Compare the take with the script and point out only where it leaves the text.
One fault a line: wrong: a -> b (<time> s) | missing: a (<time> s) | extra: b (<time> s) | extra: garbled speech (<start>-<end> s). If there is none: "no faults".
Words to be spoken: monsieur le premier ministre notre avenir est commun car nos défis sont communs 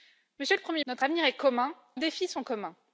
missing: ministre (0.8 s)
missing: car nos (1.7 s)